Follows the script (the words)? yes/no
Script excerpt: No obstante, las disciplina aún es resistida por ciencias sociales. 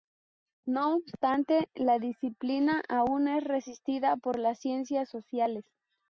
no